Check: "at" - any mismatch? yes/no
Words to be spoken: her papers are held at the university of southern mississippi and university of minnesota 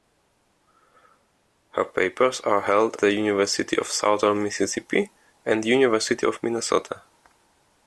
yes